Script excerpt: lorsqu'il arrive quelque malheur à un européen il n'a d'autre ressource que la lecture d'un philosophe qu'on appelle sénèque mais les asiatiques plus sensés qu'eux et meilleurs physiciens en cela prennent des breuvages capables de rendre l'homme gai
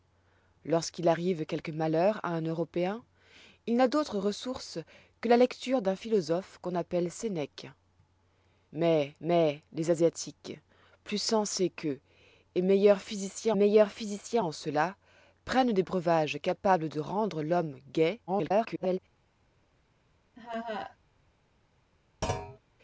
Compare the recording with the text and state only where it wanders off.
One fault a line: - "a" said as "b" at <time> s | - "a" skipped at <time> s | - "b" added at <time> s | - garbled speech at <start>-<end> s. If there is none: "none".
- "mais" added at 9.2 s
- "meilleurs physiciens" added at 13.5 s
- garbled speech at 18.3-19.0 s